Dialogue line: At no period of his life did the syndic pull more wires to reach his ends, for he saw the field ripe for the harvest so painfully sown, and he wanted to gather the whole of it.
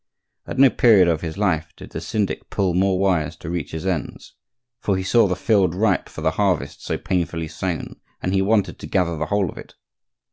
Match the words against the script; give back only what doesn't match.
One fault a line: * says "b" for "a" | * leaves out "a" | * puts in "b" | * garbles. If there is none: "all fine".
all fine